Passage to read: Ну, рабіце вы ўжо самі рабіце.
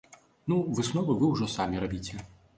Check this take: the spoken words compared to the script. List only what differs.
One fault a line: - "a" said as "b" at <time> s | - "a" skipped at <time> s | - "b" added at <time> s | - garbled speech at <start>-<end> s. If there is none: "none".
- "рабіце" said as "высновы" at 0.8 s